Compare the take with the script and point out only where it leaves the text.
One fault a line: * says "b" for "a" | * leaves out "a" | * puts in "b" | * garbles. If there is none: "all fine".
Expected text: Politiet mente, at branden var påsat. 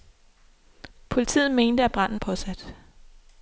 * leaves out "var"